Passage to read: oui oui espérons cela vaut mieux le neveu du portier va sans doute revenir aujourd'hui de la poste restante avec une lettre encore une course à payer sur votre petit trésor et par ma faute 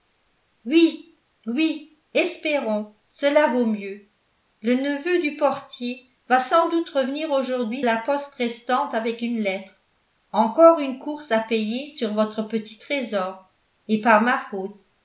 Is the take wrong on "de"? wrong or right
wrong